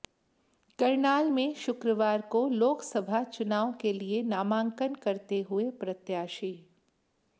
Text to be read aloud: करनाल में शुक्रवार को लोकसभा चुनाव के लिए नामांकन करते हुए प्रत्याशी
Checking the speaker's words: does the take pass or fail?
pass